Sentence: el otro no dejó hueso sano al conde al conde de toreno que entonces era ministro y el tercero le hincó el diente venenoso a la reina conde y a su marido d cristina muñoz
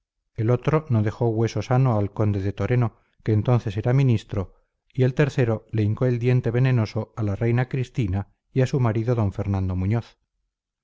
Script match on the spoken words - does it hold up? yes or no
no